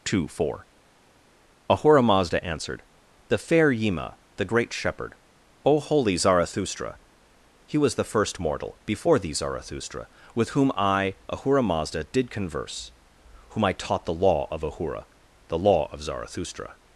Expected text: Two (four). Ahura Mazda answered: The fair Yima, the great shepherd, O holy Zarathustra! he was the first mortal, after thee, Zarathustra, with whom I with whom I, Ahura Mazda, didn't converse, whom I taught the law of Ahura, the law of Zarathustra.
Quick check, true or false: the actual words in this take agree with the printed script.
false